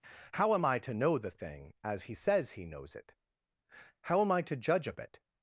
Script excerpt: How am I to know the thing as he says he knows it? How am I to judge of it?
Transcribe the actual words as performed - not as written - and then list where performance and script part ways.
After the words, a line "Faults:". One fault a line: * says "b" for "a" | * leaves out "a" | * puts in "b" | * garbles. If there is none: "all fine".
How am I to know the thing as he says he knows it? How am I to judge of it?
Faults:
all fine